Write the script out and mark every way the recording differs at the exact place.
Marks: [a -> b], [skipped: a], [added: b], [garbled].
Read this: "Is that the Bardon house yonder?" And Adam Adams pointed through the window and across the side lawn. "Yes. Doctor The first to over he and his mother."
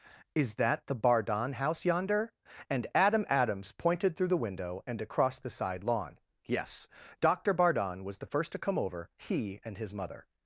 "Is that the Bardon house yonder?" And Adam Adams pointed through the window and across the side lawn. "Yes. Doctor [added: Bardon was] The first to [added: come] over he and his mother."